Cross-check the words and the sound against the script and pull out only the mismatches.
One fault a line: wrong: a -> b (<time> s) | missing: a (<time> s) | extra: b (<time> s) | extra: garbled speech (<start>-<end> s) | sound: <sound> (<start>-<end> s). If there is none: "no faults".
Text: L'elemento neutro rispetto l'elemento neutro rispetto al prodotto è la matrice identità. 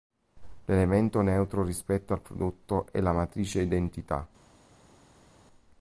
missing: l'elemento neutro rispetto (2.1 s)